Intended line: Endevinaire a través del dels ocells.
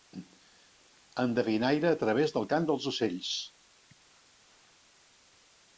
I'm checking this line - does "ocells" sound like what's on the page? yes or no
yes